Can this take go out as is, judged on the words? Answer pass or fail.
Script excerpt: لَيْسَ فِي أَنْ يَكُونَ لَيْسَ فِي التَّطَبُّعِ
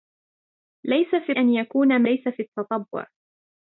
pass